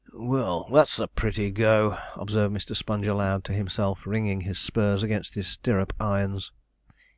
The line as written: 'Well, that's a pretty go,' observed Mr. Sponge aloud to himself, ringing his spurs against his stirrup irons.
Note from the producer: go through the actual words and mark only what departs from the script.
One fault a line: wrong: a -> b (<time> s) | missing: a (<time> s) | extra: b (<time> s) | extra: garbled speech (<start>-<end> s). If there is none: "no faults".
no faults